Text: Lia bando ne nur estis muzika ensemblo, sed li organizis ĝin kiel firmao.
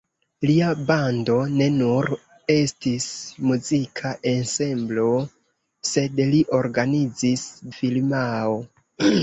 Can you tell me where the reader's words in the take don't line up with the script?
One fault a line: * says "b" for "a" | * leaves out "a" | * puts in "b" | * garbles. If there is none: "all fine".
* leaves out "ĝin kiel"